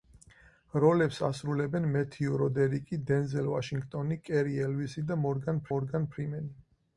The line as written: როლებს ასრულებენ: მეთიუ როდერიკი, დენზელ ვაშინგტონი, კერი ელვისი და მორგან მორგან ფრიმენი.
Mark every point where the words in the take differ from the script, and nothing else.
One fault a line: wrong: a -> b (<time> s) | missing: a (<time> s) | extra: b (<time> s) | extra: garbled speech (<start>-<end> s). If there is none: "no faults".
no faults